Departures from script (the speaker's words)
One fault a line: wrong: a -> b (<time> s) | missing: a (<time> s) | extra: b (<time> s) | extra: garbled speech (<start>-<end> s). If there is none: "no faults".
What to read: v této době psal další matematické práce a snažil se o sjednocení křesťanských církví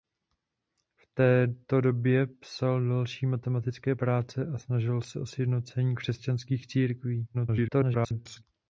extra: garbled speech (7.3-8.4 s)